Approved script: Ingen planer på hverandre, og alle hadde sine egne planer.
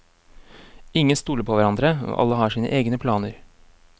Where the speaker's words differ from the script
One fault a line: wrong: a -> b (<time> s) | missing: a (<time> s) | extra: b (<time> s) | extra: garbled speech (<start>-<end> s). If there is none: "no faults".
wrong: planer -> stoler (1.1 s)
wrong: hadde -> har (2.4 s)